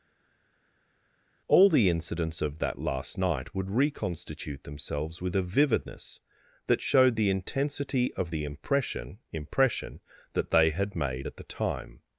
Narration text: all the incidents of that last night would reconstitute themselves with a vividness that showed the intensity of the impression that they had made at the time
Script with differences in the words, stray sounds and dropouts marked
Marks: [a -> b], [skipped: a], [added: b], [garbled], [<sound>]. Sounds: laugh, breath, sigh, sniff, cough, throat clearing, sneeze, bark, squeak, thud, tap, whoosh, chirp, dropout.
all the incidents of that last night would reconstitute themselves with a vividness that showed the intensity of the impression [added: impression] that they had made at the time